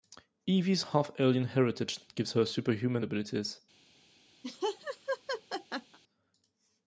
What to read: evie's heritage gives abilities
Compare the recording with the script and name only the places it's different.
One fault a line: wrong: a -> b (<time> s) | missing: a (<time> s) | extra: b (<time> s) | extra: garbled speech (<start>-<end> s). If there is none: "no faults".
extra: half alien (0.8 s)
extra: her superhuman (2.3 s)